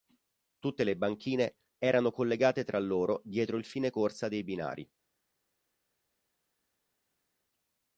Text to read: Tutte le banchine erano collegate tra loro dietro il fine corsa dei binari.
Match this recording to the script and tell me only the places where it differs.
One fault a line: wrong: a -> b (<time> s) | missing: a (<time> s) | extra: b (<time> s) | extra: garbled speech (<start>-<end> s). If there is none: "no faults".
no faults